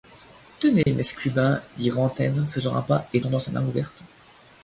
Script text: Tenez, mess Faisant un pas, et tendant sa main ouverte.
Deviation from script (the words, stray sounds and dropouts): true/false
true